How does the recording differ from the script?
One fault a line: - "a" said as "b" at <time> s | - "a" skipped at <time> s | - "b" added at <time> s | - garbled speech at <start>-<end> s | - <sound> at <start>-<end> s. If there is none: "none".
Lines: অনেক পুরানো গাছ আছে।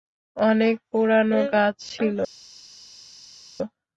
- "আছে" said as "ছিল" at 1.9 s